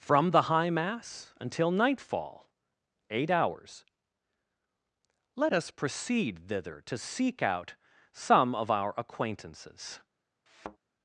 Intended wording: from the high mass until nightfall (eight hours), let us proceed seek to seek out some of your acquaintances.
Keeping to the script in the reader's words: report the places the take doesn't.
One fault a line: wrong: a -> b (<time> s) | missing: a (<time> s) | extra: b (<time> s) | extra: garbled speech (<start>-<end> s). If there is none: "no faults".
wrong: seek -> thither (6.5 s)
wrong: your -> our (8.7 s)